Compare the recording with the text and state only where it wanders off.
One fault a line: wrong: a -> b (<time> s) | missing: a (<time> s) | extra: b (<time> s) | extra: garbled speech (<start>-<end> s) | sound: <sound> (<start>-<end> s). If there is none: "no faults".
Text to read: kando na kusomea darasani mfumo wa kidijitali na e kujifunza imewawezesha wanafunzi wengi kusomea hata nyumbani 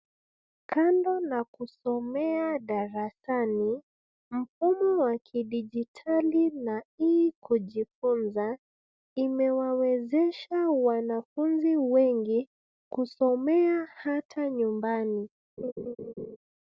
sound: laugh (15.6-16.4 s)